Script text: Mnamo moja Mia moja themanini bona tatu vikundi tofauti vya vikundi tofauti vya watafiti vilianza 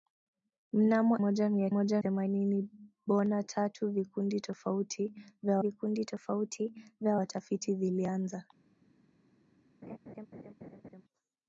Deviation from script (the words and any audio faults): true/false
true